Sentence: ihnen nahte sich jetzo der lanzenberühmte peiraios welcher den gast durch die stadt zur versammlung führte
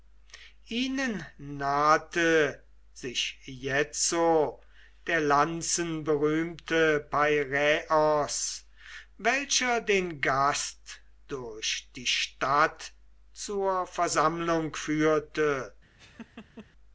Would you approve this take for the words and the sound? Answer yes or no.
no